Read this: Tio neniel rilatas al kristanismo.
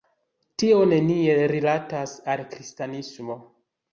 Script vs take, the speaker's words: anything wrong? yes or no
no